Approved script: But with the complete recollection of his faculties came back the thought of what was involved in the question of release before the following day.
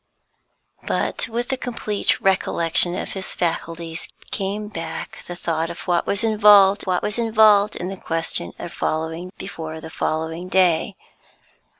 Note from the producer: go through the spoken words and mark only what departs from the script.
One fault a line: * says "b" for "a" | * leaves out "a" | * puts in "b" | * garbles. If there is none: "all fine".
* puts in "what was involved"
* says "following" for "release"